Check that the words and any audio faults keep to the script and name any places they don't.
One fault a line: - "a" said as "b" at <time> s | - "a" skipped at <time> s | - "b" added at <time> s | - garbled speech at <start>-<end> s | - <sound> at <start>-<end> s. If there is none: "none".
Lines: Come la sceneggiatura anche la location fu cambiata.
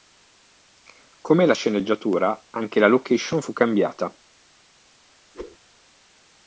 - whoosh at 5.3-5.6 s